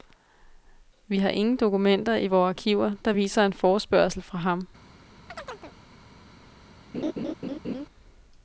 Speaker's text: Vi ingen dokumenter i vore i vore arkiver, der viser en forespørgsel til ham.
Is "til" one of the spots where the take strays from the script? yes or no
yes